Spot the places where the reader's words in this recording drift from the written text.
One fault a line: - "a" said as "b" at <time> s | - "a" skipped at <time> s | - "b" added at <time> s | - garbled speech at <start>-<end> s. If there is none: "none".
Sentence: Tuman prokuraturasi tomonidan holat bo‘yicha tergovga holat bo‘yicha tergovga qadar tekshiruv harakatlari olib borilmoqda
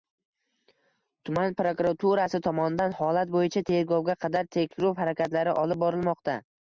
- "holat bo‘yicha tergovga" skipped at 4.2 s